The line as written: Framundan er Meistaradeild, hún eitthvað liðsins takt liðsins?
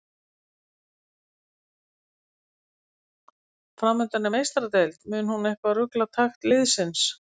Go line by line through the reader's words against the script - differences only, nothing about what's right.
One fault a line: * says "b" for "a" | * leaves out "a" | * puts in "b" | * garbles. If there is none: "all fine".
* puts in "mun"
* says "rugla" for "liðsins"